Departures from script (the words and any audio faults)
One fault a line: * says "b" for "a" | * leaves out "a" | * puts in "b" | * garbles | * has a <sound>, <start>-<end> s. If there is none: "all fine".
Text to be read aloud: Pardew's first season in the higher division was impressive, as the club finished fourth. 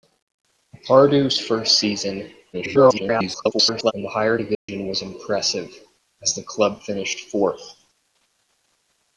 * garbles
* has a dropout, 4.5-4.7 s